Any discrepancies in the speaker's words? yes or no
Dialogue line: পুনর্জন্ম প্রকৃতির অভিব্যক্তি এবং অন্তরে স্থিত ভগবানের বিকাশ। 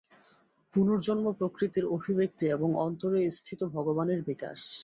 no